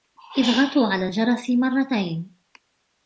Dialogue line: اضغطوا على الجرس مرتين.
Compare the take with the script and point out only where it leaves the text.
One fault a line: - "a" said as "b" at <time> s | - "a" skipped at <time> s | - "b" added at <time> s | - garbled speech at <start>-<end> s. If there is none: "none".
none